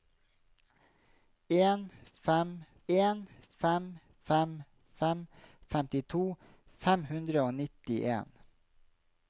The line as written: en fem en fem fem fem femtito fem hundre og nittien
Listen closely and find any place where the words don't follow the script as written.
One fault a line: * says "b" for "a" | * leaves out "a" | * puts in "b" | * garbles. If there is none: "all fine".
all fine